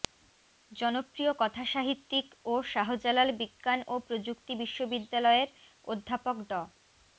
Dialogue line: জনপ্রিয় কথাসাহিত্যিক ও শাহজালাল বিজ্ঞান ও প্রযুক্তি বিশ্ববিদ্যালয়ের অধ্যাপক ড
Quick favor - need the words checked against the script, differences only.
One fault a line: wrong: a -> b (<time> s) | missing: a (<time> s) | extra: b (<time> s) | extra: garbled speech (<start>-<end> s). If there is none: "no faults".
no faults